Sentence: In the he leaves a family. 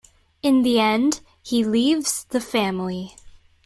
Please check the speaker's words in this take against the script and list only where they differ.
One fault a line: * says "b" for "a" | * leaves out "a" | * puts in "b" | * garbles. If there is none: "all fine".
* puts in "end"
* says "the" for "a"